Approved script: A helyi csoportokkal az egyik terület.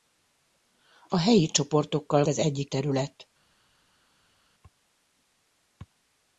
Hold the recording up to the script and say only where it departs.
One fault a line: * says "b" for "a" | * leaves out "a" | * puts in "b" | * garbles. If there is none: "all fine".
all fine